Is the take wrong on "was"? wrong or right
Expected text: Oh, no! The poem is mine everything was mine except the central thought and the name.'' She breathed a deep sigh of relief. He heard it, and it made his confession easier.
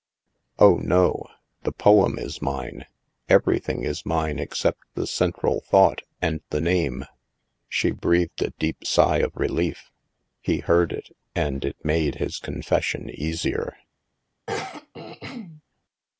wrong